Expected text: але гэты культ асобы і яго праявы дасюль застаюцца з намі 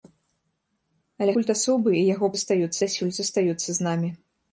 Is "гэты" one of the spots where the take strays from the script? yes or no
yes